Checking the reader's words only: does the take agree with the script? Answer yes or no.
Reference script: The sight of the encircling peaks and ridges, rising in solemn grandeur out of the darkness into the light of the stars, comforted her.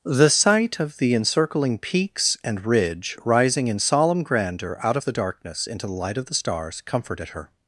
no